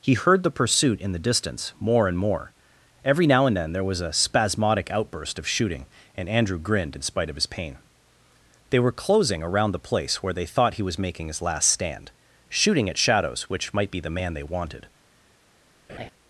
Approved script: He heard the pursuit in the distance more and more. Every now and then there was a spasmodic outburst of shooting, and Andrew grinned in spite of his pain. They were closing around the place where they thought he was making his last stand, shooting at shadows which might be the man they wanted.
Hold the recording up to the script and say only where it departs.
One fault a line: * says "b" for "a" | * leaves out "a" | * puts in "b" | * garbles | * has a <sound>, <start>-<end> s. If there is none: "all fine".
* has a laugh, 15.9-16.1 s